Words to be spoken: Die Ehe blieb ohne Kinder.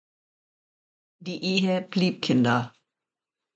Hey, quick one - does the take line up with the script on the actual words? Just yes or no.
no